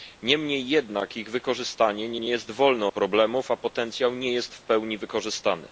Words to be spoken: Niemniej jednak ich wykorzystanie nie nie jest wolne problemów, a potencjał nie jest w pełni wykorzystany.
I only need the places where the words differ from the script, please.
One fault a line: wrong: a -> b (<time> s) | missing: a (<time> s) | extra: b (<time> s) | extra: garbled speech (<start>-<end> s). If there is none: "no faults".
no faults